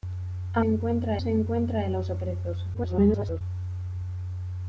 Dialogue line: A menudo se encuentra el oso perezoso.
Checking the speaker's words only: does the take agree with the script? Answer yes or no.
no